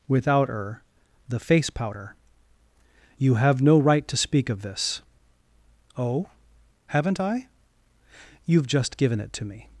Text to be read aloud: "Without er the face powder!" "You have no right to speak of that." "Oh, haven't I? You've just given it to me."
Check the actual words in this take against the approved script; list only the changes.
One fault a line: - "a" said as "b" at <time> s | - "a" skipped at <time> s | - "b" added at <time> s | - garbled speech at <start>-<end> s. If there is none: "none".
- "that" said as "this" at 4.6 s